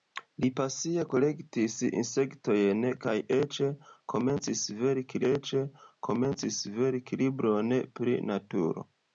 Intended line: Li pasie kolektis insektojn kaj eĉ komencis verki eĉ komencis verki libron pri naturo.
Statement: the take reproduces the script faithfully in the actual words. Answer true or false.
true